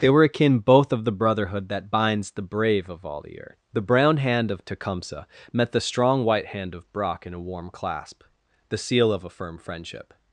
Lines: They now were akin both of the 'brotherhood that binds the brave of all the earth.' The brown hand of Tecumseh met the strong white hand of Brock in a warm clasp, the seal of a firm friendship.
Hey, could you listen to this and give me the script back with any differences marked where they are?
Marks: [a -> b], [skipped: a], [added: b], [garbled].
They [skipped: now] were akin both of the 'brotherhood that binds the brave of all the earth.' The brown hand of Tecumseh met the strong white hand of Brock in a warm clasp, the seal of a firm friendship.